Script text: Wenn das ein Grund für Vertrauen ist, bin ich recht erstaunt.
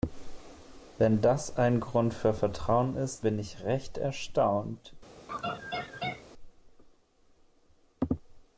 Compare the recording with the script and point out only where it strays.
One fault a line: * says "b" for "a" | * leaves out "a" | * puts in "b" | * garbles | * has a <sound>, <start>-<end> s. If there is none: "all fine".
* has a laugh, 5.3-6.3 s